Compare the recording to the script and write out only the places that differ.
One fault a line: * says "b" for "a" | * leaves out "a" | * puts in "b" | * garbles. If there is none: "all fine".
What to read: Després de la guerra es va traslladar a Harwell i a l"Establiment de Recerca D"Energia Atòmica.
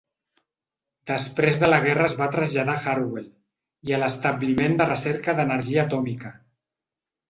all fine